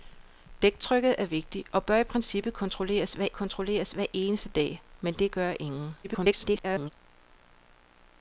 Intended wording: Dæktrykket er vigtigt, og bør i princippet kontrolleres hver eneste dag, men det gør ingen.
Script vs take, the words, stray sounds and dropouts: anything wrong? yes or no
yes